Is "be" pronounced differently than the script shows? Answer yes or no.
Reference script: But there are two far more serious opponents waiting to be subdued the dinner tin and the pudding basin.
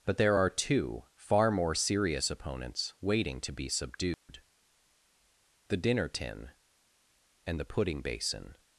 no